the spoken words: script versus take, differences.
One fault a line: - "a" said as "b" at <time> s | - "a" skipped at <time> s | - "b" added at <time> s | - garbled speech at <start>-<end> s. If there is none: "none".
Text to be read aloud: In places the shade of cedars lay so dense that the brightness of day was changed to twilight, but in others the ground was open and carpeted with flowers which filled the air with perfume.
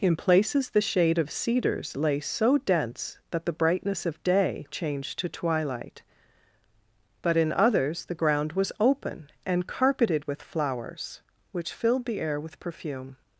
- "was" skipped at 4.7 s